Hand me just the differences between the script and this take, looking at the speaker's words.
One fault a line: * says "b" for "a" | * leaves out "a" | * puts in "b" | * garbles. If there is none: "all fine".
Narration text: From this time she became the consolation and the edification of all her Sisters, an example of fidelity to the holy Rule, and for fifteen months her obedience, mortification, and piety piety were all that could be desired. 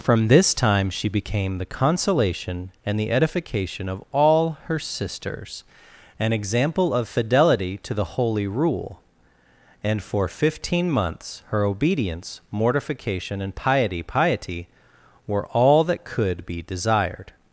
all fine